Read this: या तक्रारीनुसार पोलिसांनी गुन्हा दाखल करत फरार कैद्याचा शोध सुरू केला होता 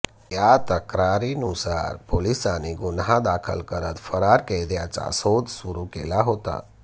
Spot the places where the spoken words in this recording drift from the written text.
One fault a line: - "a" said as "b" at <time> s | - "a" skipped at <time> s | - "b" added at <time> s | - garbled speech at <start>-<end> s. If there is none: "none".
none